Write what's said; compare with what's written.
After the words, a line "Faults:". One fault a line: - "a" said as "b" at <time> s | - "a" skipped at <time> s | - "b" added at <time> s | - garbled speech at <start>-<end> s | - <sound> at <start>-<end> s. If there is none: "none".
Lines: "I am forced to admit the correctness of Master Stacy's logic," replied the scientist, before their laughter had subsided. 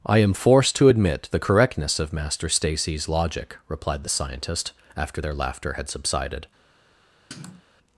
"I am forced to admit the correctness of Master Stacy's logic," replied the scientist, after their laughter had subsided.
Faults:
- "before" said as "after" at 5.0 s
- sniff at 7.3-7.6 s